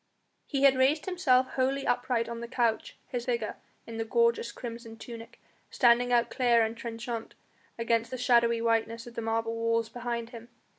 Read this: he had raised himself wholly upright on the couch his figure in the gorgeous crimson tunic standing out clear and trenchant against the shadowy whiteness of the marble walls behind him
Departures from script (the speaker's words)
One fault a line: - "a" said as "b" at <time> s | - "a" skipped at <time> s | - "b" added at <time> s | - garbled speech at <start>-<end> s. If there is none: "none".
none